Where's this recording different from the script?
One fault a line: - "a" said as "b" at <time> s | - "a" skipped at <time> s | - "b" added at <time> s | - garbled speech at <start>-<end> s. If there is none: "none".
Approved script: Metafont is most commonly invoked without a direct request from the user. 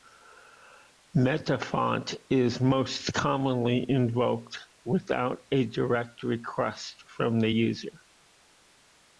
none